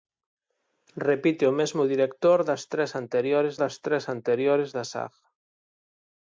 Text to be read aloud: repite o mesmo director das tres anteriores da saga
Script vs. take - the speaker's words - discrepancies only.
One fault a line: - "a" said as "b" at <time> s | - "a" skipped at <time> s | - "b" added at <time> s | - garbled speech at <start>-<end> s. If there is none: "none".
- "das tres anteriores" added at 3.6 s